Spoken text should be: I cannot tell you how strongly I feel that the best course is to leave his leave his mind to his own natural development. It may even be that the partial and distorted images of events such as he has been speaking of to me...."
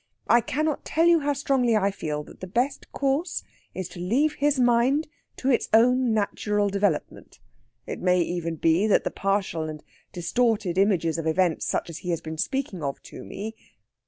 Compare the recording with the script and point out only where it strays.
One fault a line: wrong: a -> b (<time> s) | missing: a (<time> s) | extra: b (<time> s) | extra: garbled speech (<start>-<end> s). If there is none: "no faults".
missing: leave his (4.6 s)
wrong: his -> its (5.5 s)